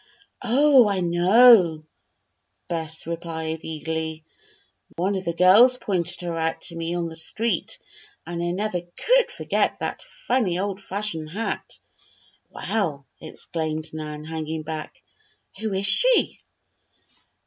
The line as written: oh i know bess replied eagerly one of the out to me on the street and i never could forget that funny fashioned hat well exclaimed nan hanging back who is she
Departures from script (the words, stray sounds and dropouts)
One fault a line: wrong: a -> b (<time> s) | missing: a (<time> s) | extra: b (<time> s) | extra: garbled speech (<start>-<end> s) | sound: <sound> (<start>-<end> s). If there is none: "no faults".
sound: dropout (4.9-5.0 s)
extra: girls pointed her (5.3 s)
extra: old (10.6 s)